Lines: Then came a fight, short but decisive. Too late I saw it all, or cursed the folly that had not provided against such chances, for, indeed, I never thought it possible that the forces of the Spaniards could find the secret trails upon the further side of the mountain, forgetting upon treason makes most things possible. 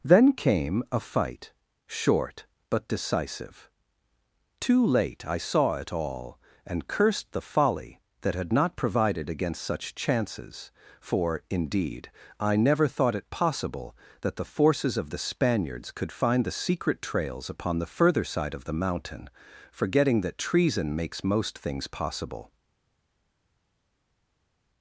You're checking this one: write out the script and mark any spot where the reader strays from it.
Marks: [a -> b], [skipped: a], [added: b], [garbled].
Then came a fight, short but decisive. Too late I saw it all, [or -> and] cursed the folly that had not provided against such chances, for, indeed, I never thought it possible that the forces of the Spaniards could find the secret trails upon the further side of the mountain, forgetting [upon -> that] treason makes most things possible.